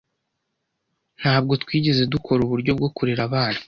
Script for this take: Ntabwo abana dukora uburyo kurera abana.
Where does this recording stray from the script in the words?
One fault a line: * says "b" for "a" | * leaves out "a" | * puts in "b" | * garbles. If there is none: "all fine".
* says "twigeze" for "abana"
* puts in "bwo"